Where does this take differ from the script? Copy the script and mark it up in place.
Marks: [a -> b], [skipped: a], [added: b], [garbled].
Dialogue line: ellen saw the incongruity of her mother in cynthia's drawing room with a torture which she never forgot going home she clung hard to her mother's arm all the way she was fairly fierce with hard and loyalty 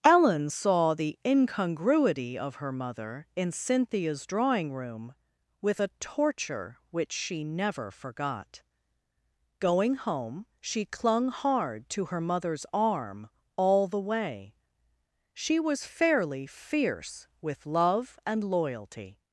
ellen saw the incongruity of her mother in cynthia's drawing room with a torture which she never forgot going home she clung hard to her mother's arm all the way she was fairly fierce with [hard -> love] and loyalty